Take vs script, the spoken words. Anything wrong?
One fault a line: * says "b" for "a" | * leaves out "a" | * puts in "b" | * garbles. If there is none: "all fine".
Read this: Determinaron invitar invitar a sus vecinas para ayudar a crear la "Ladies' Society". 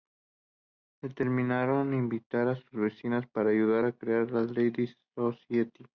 * leaves out "invitar"